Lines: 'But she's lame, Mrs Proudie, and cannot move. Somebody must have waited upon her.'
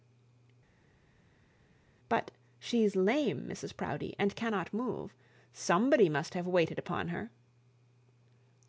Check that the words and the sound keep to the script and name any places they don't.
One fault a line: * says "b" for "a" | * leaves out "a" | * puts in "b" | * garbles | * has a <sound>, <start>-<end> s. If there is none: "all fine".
all fine